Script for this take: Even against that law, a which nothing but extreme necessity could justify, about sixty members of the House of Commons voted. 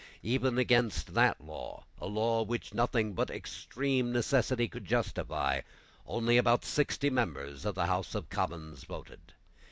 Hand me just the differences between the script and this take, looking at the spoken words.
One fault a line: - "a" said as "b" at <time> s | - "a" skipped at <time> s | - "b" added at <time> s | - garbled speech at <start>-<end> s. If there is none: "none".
- "law" added at 2.1 s
- "only" added at 6.1 s